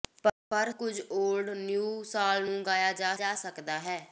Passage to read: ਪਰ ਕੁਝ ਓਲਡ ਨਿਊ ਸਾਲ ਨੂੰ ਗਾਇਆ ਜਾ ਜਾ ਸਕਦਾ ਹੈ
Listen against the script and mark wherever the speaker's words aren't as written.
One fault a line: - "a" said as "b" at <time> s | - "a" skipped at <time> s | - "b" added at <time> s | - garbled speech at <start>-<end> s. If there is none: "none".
none